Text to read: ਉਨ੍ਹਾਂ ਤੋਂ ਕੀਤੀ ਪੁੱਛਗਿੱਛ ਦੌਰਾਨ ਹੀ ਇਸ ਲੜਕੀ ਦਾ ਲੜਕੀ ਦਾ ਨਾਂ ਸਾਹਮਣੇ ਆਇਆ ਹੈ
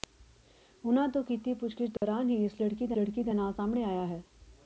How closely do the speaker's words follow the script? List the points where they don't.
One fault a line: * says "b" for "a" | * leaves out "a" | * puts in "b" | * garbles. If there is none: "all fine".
all fine